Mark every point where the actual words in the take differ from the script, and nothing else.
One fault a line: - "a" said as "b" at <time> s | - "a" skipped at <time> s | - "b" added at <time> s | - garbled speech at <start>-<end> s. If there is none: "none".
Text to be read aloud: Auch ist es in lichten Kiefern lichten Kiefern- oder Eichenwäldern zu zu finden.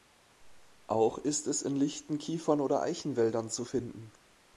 - "lichten Kiefern" skipped at 2.6 s
- "zu" skipped at 3.6 s